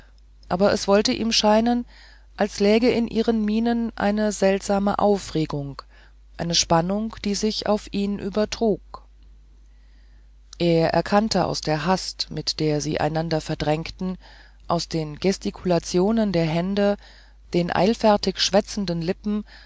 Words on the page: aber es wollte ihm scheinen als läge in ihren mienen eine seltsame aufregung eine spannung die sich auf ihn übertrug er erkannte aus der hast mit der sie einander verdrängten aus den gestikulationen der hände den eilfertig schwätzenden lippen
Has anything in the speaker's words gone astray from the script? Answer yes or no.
no